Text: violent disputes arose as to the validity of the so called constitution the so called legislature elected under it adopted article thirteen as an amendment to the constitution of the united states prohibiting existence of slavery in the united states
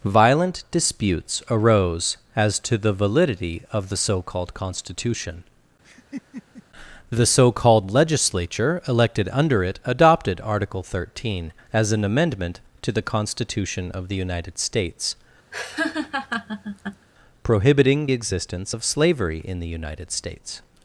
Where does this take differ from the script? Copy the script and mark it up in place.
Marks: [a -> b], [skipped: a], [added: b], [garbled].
violent disputes arose as to the validity of the so called constitution the so called legislature elected under it adopted article thirteen as an amendment to the constitution of the united states prohibiting existence of slavery in the united states